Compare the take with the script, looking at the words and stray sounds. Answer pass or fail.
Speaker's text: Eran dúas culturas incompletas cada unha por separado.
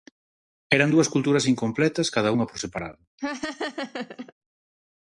fail